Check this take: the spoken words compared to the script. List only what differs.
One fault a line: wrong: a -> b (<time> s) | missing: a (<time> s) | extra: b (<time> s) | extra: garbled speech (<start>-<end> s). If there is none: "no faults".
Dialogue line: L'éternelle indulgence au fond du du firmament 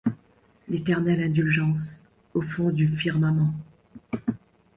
missing: du (2.9 s)